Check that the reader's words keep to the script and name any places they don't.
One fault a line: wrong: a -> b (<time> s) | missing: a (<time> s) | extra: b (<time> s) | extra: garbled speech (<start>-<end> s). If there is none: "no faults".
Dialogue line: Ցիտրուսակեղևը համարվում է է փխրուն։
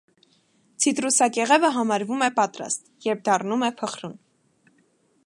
extra: պատրաստ երբ դառնում (2.4 s)